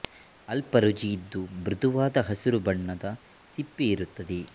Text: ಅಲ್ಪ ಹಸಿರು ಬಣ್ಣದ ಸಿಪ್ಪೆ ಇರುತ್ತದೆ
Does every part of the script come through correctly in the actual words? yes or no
no